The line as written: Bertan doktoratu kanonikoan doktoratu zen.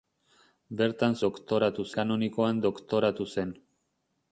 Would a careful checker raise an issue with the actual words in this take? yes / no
no